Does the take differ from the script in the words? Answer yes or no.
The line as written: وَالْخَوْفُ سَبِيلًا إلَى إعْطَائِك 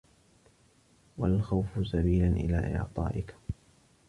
no